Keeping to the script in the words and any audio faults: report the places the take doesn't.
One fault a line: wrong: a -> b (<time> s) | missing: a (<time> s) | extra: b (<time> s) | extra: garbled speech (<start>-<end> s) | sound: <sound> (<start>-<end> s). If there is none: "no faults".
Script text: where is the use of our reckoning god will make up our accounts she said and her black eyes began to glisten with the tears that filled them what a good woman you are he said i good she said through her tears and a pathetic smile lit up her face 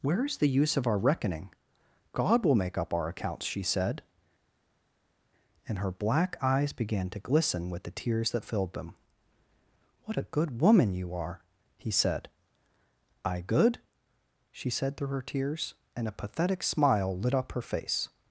no faults